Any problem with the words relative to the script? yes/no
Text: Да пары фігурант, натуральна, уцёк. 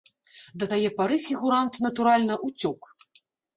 yes